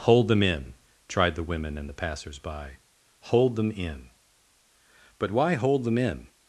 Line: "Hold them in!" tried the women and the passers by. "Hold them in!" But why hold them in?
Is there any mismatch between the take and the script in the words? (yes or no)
no